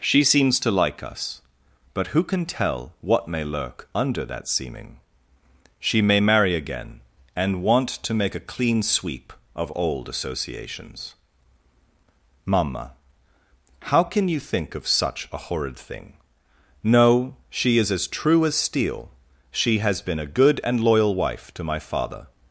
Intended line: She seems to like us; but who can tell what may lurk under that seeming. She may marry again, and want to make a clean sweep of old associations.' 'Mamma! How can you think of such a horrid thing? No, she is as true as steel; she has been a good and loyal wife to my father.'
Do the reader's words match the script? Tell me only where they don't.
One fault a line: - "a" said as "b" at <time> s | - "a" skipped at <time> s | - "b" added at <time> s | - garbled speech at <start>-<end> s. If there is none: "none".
none